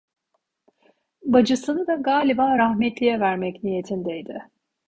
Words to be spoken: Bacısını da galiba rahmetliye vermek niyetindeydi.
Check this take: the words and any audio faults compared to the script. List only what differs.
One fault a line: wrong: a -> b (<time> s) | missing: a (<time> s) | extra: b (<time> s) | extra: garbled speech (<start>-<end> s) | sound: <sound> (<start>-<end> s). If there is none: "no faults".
no faults